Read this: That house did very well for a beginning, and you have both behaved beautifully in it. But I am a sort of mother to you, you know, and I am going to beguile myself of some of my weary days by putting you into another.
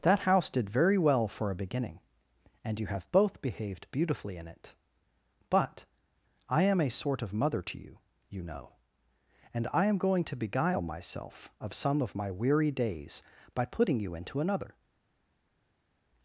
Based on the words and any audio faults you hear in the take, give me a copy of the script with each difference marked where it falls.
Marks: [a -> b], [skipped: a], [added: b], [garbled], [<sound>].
That house did very well for a beginning, and you have both behaved beautifully in it. But I am a sort of mother to you, you know, and I am going to beguile myself of some of my weary days by putting you into another.